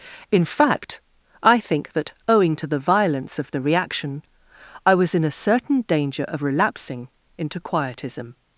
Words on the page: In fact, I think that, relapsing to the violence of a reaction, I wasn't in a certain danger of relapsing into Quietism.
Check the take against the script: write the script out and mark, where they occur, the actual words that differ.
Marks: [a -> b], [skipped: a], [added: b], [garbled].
In fact, I think that, [relapsing -> owing] to the violence of [a -> the] reaction, I [wasn't -> was] in a certain danger of relapsing into Quietism.